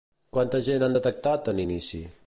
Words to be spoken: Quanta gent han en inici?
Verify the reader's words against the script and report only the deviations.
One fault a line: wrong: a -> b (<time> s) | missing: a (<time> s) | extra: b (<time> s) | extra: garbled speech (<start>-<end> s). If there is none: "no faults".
extra: detectat (1.0 s)